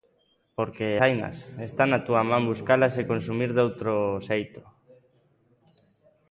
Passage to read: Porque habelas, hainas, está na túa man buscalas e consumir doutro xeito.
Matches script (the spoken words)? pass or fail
fail